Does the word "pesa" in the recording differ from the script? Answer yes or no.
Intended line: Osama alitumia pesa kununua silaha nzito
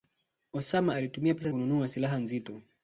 no